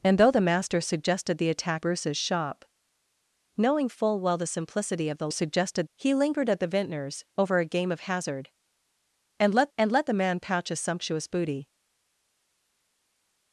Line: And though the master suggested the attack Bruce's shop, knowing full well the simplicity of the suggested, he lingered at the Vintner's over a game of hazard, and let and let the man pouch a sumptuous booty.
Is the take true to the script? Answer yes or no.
yes